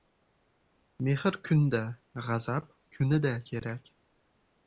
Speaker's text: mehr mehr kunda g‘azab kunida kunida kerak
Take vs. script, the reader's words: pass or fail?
fail